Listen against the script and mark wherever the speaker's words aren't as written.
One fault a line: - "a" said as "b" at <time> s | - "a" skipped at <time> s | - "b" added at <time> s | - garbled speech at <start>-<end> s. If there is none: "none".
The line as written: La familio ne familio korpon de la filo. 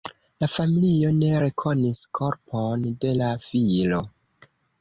- "familio" said as "rekonis" at 1.4 s